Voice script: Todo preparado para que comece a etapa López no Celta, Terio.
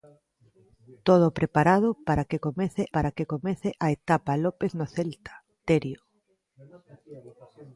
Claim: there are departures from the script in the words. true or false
true